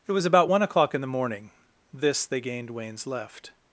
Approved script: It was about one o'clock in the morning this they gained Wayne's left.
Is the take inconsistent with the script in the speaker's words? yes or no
no